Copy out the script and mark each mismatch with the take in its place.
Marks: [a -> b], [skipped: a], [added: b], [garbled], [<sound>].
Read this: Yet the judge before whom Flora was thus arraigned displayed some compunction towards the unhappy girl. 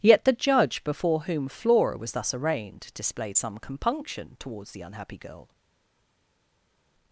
Yet the judge before whom Flora was thus arraigned displayed some compunction towards the unhappy girl.